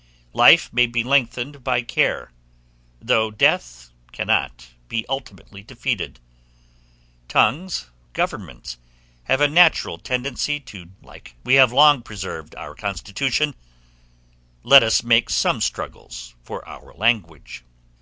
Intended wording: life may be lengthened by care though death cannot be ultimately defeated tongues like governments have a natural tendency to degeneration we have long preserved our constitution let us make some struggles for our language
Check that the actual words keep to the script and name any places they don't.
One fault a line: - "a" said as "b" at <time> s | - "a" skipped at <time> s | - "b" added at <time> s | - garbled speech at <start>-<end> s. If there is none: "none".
- "like" skipped at 7.8 s
- "degeneration" said as "like" at 11.0 s